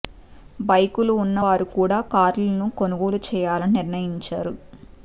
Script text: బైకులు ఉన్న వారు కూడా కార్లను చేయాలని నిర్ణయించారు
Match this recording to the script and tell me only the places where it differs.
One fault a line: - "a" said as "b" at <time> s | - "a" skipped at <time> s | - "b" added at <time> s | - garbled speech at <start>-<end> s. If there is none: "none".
- "కొనుగోలు" added at 2.8 s